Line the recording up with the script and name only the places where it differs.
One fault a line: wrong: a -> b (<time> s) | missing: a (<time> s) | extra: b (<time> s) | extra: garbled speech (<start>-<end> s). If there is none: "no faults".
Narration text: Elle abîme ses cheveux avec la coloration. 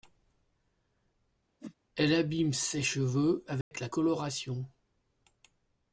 no faults